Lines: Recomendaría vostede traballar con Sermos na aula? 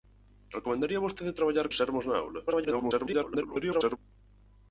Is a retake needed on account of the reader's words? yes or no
yes